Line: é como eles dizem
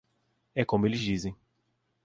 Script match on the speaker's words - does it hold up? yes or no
yes